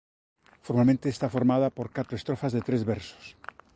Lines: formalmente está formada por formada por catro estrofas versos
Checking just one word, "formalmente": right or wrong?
right